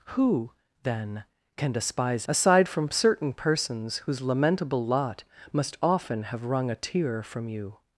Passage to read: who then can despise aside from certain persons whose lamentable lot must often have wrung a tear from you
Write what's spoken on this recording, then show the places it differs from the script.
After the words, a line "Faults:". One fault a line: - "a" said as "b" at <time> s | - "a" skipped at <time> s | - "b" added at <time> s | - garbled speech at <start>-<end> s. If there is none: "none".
who then can despise aside from certain persons whose lamentable lot must often have wrung a tear from you
Faults:
none